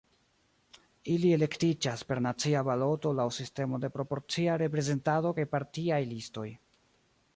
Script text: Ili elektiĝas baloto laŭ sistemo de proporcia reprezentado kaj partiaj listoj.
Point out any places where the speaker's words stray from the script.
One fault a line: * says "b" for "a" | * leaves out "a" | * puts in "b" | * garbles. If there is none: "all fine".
* puts in "per nacia"